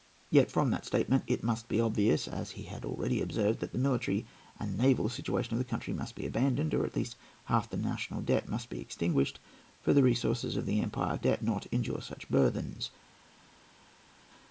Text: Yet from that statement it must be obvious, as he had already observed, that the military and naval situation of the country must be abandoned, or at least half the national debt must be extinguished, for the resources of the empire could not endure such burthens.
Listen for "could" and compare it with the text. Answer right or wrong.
wrong